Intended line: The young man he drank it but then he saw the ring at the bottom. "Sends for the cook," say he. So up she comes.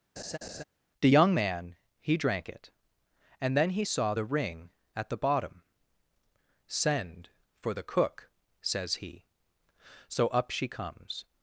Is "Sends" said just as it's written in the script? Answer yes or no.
no